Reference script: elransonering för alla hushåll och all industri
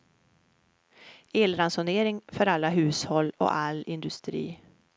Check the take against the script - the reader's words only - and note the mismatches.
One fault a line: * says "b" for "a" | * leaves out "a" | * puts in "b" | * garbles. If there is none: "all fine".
all fine